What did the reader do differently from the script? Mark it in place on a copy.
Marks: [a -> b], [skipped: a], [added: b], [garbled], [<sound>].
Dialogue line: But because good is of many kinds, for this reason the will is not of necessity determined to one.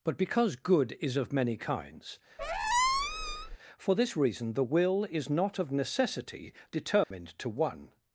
But because good is of many kinds, [squeak] for this reason the will is not of necessity determined [dropout] to one.